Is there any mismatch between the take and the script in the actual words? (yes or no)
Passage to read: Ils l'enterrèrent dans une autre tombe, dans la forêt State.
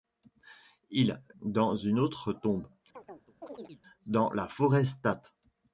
yes